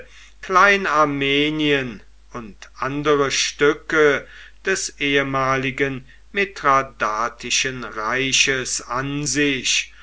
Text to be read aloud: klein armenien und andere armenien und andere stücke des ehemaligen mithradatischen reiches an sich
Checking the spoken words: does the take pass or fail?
fail